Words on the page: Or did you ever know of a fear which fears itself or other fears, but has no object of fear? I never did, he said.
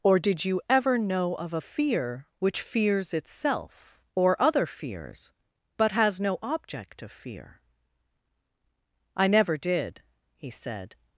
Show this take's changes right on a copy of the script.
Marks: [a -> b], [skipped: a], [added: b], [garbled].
Or did you ever know of a fear which fears itself or other fears, but has no object of fear? I never did, he said.